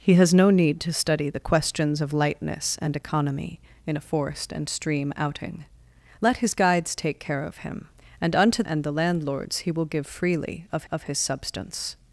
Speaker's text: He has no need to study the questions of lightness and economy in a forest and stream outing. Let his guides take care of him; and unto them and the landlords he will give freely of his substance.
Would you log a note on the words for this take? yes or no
yes